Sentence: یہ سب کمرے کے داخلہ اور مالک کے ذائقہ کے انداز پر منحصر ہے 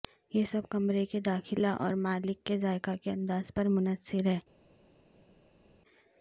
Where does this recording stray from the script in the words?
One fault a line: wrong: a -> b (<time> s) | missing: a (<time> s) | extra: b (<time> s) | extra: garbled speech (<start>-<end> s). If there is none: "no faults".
no faults